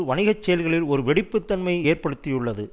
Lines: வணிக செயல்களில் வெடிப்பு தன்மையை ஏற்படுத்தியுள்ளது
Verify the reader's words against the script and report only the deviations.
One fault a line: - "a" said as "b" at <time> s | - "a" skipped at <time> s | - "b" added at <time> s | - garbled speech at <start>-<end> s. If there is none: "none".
- "ஒரு" added at 0.9 s